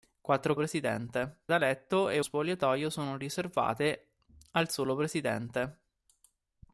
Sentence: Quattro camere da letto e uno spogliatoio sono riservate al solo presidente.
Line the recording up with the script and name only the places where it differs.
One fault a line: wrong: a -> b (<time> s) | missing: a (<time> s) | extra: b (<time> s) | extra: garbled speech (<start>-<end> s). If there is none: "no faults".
wrong: camere -> presidente (0.5 s)
missing: uno (2.2 s)